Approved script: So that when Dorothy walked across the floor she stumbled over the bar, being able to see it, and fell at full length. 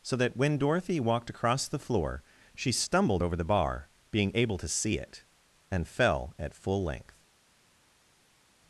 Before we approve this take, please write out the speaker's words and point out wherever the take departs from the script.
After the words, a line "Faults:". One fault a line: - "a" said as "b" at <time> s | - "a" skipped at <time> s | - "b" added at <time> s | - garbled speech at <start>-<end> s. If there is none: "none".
So that when Dorothy walked across the floor she stumbled over the bar, being able to see it, and fell at full length.
Faults:
none